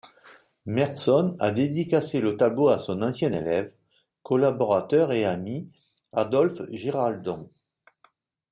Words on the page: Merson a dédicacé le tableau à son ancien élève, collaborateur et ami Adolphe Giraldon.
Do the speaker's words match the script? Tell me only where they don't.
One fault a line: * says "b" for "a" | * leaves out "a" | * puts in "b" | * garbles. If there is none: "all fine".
all fine